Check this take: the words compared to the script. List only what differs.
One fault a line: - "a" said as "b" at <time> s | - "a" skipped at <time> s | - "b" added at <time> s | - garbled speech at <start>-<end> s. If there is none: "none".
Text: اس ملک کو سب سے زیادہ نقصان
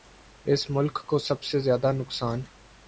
none